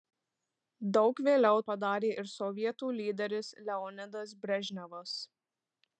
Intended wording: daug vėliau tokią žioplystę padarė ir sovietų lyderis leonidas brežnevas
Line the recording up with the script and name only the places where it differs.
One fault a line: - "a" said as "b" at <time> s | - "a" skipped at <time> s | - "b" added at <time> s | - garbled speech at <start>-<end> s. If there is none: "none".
- "tokią žioplystę" skipped at 1.6 s